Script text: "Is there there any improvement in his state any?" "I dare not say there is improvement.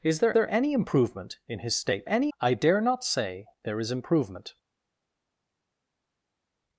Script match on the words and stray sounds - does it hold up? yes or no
yes